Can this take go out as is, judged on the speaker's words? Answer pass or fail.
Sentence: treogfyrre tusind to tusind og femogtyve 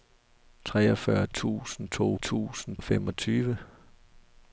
pass